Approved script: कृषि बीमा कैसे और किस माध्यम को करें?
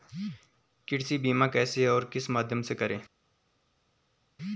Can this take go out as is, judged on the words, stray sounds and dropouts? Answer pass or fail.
fail